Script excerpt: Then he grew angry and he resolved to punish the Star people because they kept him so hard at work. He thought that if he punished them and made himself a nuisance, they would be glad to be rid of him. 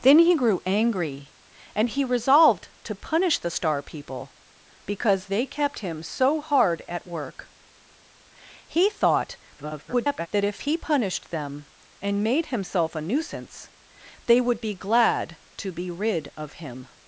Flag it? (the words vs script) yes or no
yes